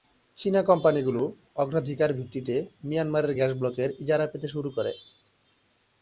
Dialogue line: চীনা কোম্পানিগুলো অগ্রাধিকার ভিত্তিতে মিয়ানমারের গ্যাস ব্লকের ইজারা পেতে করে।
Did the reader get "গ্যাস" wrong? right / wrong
right